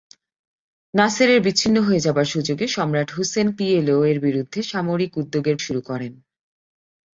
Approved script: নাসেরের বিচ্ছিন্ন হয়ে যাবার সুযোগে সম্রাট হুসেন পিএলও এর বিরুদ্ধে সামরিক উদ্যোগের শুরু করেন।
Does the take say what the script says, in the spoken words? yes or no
yes